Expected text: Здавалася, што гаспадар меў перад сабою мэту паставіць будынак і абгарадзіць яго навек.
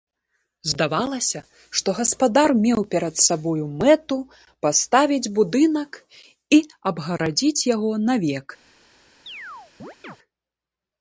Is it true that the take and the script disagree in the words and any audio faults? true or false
true